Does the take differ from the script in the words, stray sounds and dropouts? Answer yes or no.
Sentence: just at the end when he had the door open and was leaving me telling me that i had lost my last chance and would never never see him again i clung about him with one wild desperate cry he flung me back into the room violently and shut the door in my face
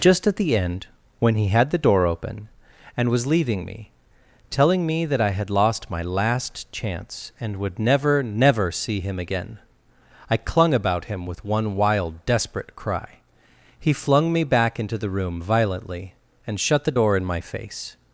no